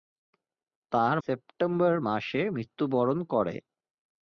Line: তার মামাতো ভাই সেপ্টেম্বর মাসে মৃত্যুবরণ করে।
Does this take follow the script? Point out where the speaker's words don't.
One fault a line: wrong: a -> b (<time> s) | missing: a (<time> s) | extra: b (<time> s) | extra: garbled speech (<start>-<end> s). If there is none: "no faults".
missing: মামাতো ভাই (1.1 s)